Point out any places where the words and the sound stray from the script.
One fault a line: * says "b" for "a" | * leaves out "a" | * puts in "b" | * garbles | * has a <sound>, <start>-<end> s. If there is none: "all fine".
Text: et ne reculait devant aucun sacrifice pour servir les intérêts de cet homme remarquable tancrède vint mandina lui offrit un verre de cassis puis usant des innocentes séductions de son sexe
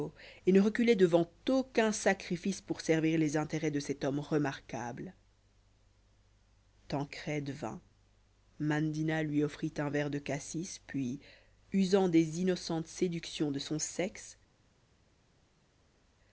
all fine